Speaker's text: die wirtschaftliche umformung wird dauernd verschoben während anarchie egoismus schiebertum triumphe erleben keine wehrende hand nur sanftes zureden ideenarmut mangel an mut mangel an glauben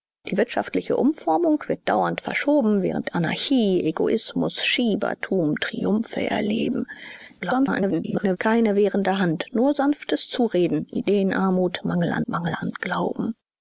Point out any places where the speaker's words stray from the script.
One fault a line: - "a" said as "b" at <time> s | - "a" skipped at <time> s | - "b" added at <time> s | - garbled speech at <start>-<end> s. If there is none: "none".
- garbled speech at 7.4-8.4 s
- "mut" skipped at 12.2 s